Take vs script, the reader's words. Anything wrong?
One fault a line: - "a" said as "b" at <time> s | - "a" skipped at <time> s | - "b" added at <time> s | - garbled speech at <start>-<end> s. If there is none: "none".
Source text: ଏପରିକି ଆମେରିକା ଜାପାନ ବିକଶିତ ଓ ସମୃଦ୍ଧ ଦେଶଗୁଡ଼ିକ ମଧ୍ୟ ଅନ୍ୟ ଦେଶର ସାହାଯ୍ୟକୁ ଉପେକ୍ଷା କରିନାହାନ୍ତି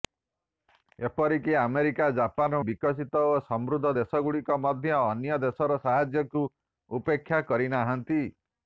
none